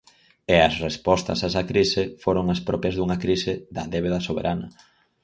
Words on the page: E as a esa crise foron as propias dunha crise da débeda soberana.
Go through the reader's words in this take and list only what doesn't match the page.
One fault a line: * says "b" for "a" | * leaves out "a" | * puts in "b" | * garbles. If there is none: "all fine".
* puts in "respostas"